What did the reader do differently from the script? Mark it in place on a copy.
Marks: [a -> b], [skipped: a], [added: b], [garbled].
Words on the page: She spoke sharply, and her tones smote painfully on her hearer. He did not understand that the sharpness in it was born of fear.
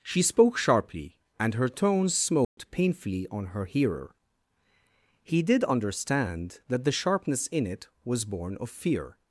She spoke sharply, and her tones smote painfully on her hearer. He did [skipped: not] understand that the sharpness in it was born of fear.